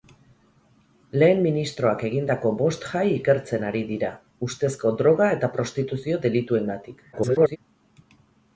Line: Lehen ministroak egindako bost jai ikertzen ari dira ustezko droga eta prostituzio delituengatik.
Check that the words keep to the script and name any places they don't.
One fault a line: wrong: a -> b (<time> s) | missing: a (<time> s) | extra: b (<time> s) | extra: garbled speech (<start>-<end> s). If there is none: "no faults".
extra: garbled speech (7.1-7.6 s)